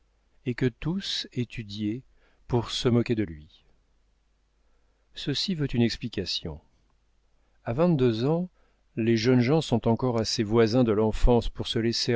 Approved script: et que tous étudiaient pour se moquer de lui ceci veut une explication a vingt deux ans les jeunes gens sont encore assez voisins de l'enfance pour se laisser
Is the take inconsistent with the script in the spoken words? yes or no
no